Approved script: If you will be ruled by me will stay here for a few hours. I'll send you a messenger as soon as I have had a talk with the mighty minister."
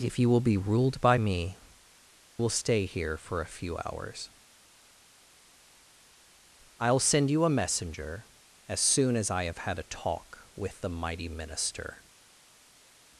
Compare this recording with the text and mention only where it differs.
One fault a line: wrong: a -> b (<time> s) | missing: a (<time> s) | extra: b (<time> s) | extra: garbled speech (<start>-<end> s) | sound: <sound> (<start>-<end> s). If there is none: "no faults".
no faults